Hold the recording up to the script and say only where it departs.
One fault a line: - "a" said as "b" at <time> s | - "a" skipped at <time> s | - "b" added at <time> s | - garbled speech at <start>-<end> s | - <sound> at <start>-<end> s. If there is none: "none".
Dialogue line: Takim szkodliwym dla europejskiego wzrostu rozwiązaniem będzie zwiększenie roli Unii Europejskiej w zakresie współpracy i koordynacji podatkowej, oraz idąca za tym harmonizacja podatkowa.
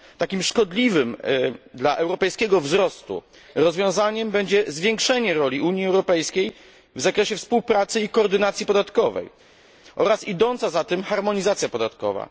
none